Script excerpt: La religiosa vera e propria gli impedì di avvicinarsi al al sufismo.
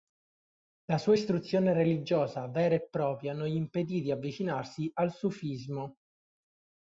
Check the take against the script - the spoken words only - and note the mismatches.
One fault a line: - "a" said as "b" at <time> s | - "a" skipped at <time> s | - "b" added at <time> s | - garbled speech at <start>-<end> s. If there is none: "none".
- "sua istruzione" added at 1.0 s
- "non" added at 3.3 s
- "al" skipped at 5.1 s